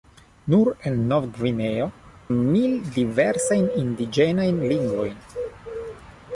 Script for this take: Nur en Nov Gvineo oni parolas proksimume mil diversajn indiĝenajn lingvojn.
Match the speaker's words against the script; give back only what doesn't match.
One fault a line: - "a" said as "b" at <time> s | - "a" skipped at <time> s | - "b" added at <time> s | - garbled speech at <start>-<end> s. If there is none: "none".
- "oni parolas proksimume" skipped at 1.8 s